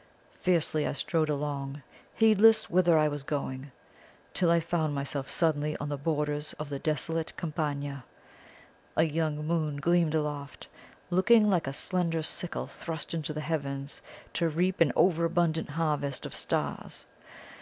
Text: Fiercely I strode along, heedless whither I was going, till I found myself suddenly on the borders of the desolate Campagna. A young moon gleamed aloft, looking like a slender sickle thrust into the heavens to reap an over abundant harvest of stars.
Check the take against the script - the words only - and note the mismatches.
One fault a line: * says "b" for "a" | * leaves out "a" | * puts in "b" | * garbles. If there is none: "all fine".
all fine